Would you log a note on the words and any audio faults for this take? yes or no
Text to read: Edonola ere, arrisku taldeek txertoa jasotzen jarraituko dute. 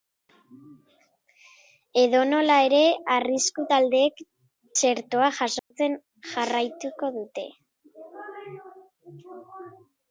yes